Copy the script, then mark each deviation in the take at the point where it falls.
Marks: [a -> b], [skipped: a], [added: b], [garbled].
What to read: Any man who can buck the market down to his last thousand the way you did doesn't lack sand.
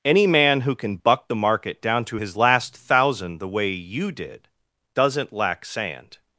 Any man who can buck the market down to his last thousand the way you did doesn't lack sand.